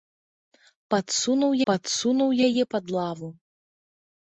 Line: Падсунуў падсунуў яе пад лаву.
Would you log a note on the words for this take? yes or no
no